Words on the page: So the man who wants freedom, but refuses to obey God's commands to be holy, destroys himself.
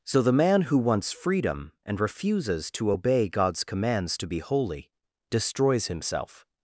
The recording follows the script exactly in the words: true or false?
false